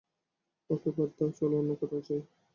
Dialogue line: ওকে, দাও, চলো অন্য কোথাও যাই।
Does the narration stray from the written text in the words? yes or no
yes